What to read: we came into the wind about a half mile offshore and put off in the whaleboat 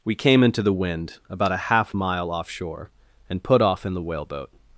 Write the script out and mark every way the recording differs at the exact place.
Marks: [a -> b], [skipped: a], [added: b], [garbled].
we came into the wind about a half mile offshore and put off in the whaleboat